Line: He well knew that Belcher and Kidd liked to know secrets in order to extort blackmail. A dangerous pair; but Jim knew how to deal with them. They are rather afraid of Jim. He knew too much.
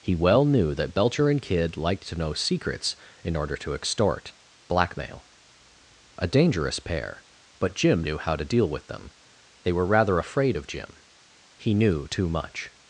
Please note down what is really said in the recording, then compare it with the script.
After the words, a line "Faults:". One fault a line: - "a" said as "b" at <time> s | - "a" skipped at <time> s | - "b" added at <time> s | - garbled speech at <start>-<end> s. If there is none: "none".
He well knew that Belcher and Kidd liked to know secrets in order to extort blackmail. A dangerous pair; but Jim knew how to deal with them. They were rather afraid of Jim. He knew too much.
Faults:
- "are" said as "were" at 9.7 s